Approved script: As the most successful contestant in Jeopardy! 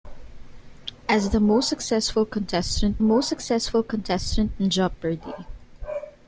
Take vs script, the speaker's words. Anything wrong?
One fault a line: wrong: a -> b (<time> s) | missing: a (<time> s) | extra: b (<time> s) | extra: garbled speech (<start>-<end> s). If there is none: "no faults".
extra: most successful contestant (3.0 s)